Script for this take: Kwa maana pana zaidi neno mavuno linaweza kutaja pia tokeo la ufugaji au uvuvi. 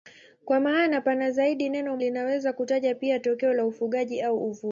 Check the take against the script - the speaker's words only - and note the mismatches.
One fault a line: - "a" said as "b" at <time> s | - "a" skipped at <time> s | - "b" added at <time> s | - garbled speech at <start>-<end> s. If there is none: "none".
- "mavuno" skipped at 2.0 s